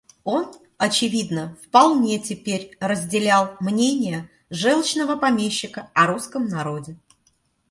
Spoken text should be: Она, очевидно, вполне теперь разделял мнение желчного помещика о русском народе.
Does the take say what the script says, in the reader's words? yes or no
no